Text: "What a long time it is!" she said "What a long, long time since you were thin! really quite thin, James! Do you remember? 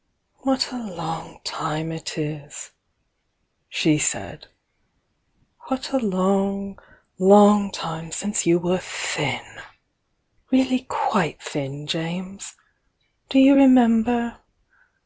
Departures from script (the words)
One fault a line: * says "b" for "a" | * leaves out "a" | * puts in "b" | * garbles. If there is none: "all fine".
all fine